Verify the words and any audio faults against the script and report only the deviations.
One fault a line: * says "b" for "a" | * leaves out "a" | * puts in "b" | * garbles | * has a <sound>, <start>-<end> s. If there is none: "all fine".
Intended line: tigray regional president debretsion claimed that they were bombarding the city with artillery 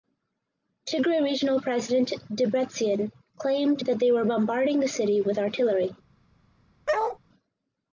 * has a bark, 6.9-7.2 s